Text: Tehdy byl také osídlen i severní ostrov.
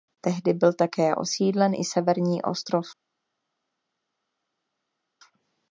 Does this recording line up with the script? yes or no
yes